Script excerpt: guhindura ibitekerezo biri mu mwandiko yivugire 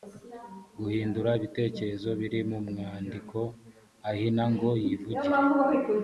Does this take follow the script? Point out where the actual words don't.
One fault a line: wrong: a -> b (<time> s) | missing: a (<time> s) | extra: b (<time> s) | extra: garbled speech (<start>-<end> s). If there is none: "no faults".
extra: ahina ngo (4.1 s)